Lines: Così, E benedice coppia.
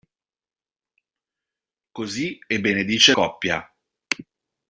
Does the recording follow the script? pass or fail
pass